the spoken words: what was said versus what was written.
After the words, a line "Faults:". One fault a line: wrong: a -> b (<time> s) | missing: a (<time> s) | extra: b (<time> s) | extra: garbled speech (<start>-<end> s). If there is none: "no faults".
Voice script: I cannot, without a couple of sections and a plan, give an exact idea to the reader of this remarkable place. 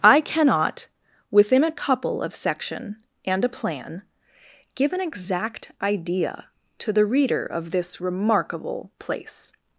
I cannot, within a couple of section and a plan, give an exact idea to the reader of this remarkable place.
Faults:
wrong: without -> within (1.3 s)
wrong: sections -> section (2.4 s)